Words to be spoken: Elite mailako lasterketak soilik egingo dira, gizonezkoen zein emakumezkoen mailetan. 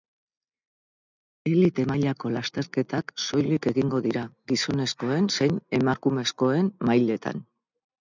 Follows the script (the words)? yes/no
yes